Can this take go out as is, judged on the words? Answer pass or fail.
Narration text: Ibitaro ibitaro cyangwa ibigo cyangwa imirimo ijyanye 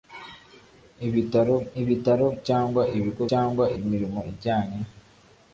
pass